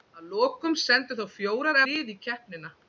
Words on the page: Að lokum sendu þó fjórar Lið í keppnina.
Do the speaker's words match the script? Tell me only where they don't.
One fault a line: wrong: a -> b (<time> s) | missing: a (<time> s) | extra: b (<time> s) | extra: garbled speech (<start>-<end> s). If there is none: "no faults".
no faults